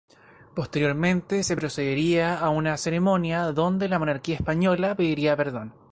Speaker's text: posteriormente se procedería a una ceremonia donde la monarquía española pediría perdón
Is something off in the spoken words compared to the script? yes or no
no